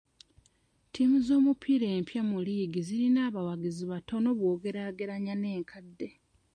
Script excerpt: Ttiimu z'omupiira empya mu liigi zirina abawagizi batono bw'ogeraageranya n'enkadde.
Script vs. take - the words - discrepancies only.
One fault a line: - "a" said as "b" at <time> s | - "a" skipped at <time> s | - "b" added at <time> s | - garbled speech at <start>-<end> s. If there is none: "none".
none